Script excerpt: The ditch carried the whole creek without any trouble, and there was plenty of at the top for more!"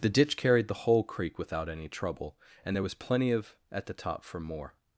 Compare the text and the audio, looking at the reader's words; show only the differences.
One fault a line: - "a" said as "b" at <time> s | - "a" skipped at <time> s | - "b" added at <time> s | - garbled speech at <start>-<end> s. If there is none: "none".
none